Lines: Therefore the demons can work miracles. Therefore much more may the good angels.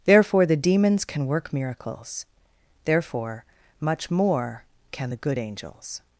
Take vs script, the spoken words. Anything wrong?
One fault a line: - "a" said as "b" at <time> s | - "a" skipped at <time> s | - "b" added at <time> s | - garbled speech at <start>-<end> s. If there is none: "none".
- "may" said as "can" at 4.9 s